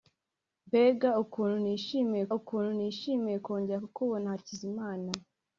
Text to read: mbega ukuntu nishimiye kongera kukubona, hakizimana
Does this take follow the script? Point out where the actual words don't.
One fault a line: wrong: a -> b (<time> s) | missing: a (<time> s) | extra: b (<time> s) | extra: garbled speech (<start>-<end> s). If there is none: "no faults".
extra: ukuntu nishimiye (2.4 s)